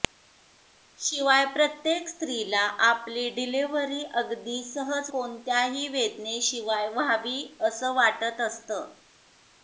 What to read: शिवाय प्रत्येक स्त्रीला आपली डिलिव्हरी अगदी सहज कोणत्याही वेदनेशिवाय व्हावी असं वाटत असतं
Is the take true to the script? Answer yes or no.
yes